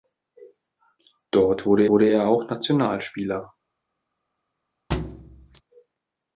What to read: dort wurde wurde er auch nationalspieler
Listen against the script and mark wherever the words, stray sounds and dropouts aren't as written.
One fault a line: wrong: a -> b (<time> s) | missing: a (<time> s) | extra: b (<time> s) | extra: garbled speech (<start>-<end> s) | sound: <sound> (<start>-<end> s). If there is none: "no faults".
sound: thud (4.9-5.6 s)